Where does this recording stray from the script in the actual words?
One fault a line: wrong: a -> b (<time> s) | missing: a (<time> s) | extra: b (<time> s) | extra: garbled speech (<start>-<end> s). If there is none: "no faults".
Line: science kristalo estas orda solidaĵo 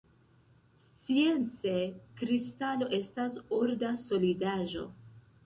no faults